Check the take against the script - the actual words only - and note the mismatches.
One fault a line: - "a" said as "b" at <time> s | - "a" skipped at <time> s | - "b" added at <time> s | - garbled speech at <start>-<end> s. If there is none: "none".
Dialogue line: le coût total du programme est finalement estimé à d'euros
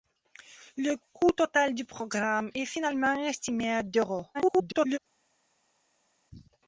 - garbled speech at 4.3-5.0 s